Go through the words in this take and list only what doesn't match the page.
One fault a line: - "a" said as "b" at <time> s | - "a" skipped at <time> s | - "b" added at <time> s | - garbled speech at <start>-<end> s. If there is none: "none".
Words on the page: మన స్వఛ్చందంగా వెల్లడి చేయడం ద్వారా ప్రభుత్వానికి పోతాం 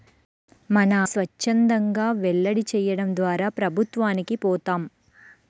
none